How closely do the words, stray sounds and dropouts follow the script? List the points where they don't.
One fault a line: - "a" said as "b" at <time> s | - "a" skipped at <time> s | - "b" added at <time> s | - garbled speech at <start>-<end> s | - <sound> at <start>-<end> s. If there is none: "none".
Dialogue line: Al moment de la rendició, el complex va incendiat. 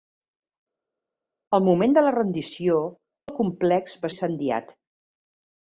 none